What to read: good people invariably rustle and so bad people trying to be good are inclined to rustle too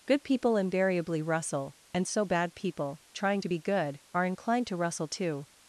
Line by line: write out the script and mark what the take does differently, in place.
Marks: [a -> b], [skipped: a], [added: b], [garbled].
good people invariably rustle and so bad people trying to be good are inclined to rustle too